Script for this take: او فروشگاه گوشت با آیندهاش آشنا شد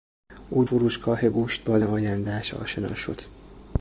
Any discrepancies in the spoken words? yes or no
no